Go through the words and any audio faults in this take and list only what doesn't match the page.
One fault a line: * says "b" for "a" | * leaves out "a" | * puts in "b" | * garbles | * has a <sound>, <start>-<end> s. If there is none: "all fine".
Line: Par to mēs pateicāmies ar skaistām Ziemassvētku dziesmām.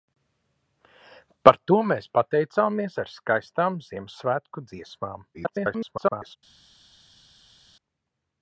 * garbles